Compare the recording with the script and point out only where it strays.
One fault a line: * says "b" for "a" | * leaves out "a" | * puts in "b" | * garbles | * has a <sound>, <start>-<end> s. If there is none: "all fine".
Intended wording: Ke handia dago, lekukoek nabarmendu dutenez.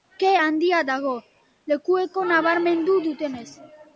all fine